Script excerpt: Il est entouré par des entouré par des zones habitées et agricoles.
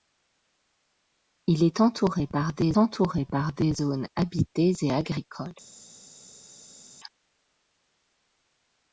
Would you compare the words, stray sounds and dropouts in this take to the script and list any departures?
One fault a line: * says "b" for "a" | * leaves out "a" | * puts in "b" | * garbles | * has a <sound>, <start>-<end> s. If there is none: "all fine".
all fine